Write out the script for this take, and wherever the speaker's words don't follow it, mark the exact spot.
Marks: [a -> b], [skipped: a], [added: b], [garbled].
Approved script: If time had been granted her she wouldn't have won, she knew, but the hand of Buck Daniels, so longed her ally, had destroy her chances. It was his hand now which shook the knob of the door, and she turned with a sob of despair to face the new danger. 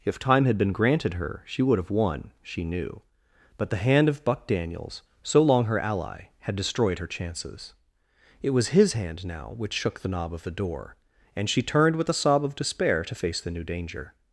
If time had been granted her she [wouldn't -> would] have won, she knew, but the hand of Buck Daniels, so [longed -> long] her ally, had [destroy -> destroyed] her chances. It was his hand now which shook the knob of the door, and she turned with a sob of despair to face the new danger.